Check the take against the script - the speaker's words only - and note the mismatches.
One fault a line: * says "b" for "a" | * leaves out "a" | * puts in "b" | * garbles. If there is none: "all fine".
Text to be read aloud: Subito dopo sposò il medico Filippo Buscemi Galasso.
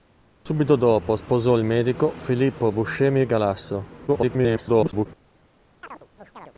* garbles